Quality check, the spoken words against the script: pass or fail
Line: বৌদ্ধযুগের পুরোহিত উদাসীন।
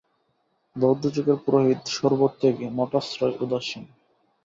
fail